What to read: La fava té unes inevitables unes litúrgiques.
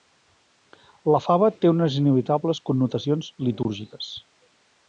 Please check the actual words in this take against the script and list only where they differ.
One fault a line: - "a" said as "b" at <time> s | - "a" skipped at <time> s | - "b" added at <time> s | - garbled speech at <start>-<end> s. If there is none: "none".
- "unes" said as "connotacions" at 2.7 s